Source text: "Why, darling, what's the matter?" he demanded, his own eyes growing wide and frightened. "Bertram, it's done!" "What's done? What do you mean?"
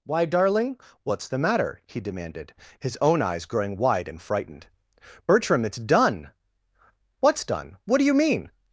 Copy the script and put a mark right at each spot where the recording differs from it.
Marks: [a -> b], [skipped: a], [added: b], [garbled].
"Why, darling, what's the matter?" he demanded, his own eyes growing wide and frightened. "Bertram, it's done!" "What's done? What do you mean?"